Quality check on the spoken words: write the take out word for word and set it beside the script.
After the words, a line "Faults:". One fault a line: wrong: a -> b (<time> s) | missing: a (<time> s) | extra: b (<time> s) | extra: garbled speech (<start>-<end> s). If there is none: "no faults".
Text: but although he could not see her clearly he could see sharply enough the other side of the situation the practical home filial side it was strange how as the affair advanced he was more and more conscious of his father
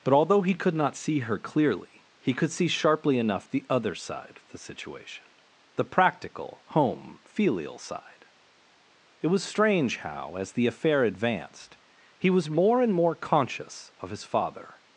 but although he could not see her clearly he could see sharply enough the other side of the situation the practical home filial side it was strange how as the affair advanced he was more and more conscious of his father
Faults:
no faults